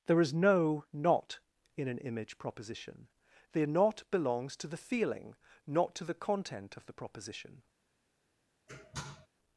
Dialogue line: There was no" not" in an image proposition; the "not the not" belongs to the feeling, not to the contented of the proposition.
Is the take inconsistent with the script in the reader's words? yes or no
yes